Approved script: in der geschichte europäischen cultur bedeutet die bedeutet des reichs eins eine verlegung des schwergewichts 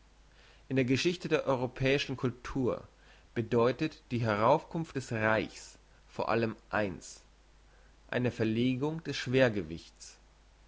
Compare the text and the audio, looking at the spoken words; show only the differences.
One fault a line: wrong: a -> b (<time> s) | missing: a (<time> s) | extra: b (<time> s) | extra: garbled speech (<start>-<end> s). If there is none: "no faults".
extra: der (1.3 s)
wrong: bedeutet -> heraufkunft (4.2 s)
extra: vor allem (6.1 s)